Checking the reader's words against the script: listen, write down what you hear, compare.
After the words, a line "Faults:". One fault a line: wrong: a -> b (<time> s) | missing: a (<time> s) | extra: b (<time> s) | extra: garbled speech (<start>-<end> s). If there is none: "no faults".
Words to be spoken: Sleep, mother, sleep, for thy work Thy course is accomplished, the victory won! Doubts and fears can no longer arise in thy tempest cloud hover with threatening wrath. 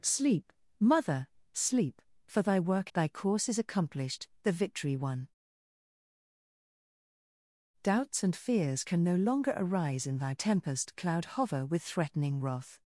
Sleep, mother, sleep, for thy work Thy course is accomplished, the victory won! Doubts and fears can no longer arise in thy tempest cloud hover with threatening wrath.
Faults:
no faults